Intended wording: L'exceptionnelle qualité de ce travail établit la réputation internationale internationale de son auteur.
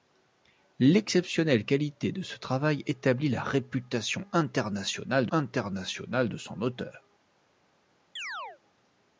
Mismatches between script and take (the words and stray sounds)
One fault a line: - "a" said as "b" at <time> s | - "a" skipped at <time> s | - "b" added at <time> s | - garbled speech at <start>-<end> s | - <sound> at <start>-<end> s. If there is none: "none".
- chirp at 8.2-8.6 s